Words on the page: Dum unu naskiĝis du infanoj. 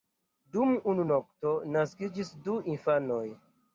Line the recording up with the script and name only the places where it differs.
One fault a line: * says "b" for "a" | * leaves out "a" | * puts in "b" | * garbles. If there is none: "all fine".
* puts in "nokto"